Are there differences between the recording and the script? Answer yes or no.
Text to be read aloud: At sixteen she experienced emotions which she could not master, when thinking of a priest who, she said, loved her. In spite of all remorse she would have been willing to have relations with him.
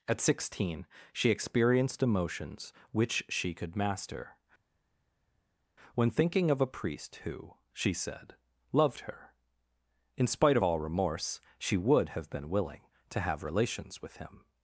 yes